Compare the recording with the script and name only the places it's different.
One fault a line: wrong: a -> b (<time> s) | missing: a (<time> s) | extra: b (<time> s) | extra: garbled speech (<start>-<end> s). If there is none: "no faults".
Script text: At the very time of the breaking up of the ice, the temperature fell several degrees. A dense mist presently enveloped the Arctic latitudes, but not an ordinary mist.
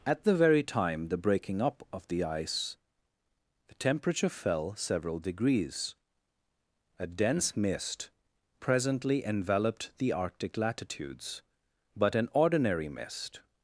missing: of (1.1 s)
missing: not (12.2 s)